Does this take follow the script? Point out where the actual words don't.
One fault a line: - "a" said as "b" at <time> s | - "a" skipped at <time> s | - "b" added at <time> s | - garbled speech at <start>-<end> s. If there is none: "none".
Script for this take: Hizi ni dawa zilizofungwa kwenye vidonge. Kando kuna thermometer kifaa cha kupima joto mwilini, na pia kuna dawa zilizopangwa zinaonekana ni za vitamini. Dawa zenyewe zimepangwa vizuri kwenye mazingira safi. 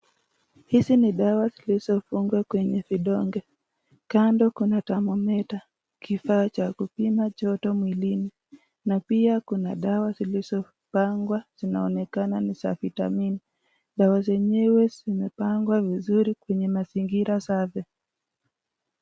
none